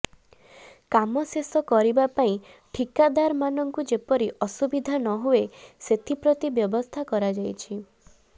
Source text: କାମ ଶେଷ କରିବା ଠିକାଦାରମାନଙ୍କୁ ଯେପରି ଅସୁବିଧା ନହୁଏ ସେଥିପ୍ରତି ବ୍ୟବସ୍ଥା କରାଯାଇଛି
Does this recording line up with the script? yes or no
no